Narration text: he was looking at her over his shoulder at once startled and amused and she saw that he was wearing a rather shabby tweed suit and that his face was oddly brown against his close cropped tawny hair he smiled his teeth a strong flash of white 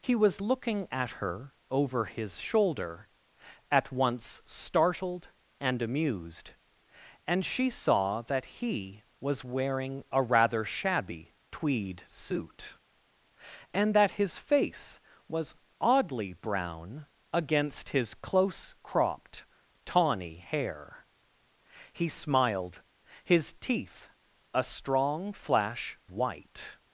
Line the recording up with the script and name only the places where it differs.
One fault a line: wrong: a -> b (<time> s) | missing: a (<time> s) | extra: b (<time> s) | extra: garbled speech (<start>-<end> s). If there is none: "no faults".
missing: of (26.0 s)